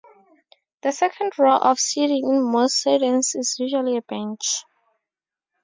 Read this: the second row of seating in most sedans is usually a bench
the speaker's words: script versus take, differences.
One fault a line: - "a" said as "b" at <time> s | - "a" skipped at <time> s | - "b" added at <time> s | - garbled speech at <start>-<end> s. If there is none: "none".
none